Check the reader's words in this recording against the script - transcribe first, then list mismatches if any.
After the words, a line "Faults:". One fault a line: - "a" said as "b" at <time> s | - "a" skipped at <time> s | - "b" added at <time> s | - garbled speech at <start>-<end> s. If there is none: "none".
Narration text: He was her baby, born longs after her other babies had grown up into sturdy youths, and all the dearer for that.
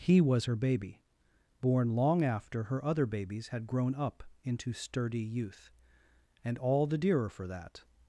He was her baby, born long after her other babies had grown up into sturdy youth, and all the dearer for that.
Faults:
- "longs" said as "long" at 1.9 s
- "youths" said as "youth" at 5.2 s